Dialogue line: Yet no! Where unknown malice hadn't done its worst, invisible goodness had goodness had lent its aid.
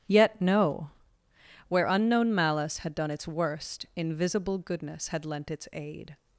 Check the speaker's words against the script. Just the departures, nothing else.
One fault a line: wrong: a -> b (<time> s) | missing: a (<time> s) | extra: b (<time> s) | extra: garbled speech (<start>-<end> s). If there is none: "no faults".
wrong: hadn't -> had (2.8 s)
missing: goodness had (5.3 s)